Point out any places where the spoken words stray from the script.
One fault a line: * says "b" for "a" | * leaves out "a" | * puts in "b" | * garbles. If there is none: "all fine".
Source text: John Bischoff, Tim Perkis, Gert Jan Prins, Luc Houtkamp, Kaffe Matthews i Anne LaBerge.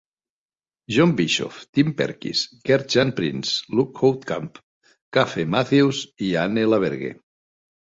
all fine